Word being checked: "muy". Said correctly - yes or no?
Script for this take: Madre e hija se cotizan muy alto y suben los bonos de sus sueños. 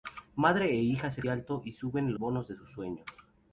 no